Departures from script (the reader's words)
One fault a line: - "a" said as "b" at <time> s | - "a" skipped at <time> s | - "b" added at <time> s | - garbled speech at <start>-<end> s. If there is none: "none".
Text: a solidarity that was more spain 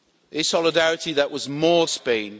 none